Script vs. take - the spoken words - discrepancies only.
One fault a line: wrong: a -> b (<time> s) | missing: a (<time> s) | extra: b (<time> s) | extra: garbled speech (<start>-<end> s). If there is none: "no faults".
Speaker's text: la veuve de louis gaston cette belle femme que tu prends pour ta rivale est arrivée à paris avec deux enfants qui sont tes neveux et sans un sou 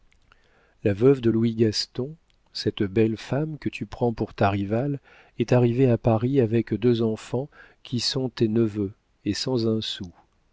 no faults